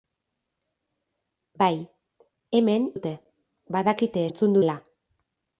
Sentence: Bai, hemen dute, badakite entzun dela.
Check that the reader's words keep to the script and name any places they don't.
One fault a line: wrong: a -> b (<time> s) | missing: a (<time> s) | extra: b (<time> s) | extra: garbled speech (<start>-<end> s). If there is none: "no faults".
no faults